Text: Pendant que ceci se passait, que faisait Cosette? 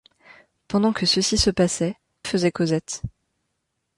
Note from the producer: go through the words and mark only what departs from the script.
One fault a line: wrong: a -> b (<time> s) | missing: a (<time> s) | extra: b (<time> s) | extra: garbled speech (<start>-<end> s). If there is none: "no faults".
missing: que (1.9 s)